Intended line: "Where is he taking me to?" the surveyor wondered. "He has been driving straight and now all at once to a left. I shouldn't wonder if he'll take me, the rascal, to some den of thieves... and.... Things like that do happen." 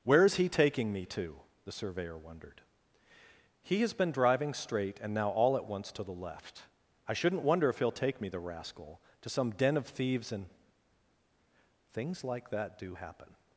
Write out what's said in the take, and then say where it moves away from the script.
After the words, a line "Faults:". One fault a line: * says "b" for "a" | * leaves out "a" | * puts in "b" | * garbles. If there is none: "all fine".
"Where is he taking me to?" the surveyor wondered. "He has been driving straight and now all at once to the left. I shouldn't wonder if he'll take me, the rascal, to some den of thieves... and.... Things like that do happen."
Faults:
* says "the" for "a"